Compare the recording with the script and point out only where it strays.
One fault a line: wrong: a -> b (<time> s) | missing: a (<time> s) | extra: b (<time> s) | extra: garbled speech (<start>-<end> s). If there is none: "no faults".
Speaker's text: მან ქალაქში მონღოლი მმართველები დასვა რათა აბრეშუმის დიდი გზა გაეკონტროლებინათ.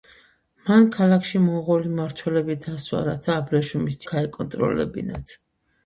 missing: დიდი გზა (4.0 s)